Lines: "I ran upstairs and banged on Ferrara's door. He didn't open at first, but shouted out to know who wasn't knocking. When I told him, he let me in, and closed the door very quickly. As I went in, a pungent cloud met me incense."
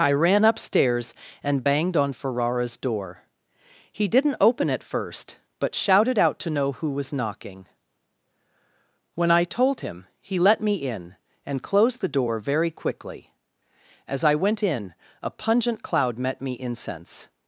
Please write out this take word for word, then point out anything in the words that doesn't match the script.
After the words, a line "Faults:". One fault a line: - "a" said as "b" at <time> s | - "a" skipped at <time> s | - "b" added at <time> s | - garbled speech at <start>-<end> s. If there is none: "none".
"I ran upstairs and banged on Ferrara's door. He didn't open at first, but shouted out to know who was knocking. When I told him, he let me in, and closed the door very quickly. As I went in, a pungent cloud met me incense."
Faults:
- "wasn't" said as "was" at 6.9 s